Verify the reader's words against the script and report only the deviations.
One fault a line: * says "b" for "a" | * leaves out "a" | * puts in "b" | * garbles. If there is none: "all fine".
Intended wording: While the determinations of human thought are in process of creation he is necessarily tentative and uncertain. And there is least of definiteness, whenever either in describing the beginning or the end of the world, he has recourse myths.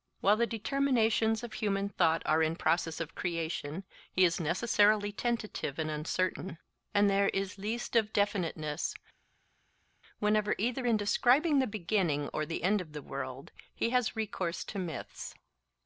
* puts in "to"